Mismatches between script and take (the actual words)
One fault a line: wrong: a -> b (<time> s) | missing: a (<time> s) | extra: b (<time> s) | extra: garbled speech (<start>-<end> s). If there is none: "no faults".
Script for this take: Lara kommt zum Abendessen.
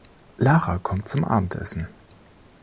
no faults